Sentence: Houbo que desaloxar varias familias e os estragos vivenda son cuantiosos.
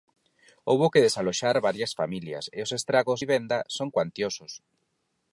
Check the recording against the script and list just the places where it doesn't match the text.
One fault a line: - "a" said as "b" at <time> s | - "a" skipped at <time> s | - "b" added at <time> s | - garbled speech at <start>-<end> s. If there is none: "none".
none